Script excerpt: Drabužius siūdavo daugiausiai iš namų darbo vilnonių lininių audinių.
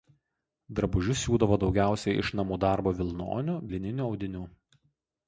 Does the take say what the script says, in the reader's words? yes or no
yes